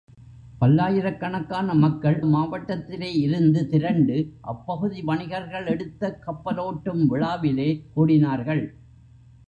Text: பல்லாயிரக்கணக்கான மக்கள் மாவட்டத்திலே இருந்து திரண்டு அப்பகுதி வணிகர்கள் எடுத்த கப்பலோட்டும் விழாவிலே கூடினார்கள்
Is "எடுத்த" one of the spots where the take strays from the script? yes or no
no